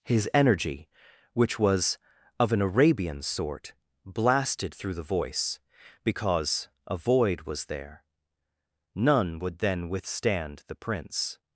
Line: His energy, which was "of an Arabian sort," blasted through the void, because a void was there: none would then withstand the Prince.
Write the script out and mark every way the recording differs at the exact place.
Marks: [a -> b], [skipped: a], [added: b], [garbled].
His energy, which was "of an Arabian sort," blasted through the [void, -> voice] because a void was there: none would then withstand the Prince.